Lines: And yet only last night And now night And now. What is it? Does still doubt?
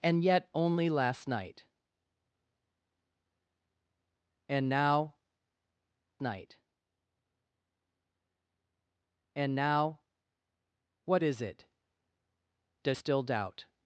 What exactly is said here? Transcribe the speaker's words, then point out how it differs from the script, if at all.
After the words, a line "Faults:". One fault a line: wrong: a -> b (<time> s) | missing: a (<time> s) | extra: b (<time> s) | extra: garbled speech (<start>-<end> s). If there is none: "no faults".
And yet only last night And now night And now. What is it? Does still doubt?
Faults:
no faults